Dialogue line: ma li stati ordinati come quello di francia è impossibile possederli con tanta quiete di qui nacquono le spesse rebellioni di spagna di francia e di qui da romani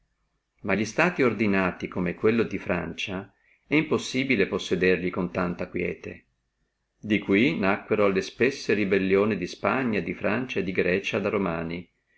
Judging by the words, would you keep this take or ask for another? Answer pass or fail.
fail